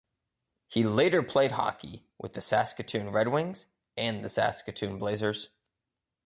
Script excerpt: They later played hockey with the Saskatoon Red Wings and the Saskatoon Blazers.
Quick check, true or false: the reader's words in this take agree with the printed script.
false